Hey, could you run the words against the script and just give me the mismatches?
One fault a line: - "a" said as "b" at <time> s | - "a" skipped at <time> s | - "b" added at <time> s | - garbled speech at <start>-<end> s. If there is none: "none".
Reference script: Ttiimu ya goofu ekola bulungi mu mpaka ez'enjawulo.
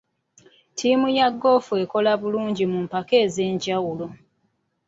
none